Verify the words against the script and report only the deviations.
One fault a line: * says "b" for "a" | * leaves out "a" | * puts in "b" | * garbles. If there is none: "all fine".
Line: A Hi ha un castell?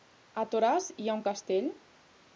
* puts in "Toràs"